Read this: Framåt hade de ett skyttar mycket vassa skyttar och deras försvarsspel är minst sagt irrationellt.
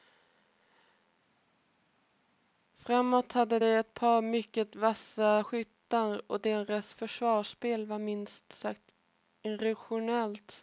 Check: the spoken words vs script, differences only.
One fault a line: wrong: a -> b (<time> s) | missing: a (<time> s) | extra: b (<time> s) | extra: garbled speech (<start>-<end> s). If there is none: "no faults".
wrong: skyttar -> par (3.9 s)
wrong: är -> var (7.9 s)